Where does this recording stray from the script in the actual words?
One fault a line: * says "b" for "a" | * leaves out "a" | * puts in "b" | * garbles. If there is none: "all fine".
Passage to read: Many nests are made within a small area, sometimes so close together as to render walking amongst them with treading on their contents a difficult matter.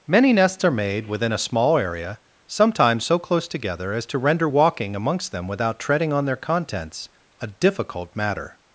* says "without" for "with"